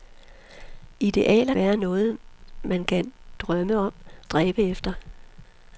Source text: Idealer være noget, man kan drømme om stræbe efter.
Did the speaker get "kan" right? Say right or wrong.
right